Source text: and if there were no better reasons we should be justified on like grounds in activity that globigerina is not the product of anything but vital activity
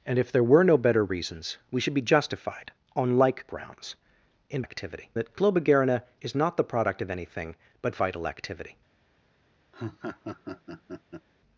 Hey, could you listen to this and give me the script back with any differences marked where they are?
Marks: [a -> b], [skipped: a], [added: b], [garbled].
and if there were no better reasons we should be justified on like grounds in activity that globigerina is not the product of anything but vital activity